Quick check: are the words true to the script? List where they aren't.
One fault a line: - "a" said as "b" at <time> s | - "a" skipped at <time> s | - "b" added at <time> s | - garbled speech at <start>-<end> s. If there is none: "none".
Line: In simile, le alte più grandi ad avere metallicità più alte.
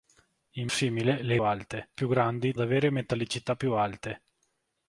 none